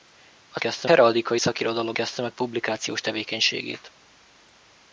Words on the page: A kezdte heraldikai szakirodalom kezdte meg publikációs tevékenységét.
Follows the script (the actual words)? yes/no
yes